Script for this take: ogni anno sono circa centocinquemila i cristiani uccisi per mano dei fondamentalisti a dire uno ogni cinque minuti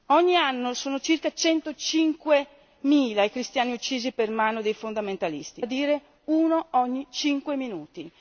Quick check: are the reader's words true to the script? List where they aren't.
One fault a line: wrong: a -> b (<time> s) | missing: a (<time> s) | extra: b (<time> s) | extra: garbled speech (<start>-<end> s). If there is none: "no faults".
no faults